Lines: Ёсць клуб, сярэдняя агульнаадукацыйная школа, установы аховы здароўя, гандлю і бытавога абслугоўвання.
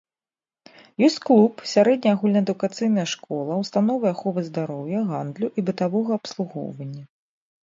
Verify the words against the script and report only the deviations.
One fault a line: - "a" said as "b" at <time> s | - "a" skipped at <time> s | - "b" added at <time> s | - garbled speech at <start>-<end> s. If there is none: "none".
none